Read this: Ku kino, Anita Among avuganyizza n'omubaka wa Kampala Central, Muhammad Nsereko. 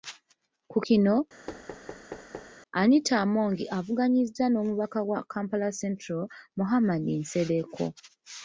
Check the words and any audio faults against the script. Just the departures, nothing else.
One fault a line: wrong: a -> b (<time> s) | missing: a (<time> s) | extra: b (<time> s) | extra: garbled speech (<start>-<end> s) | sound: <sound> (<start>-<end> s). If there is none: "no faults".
sound: thud (1.5-2.6 s)